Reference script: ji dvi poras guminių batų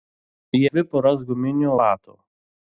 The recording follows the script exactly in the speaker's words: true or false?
true